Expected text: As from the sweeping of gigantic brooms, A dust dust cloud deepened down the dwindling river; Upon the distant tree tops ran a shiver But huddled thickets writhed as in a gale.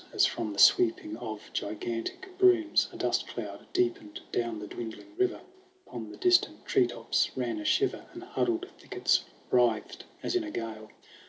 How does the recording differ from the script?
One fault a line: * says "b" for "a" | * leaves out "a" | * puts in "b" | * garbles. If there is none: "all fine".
* leaves out "dust"
* says "And" for "But"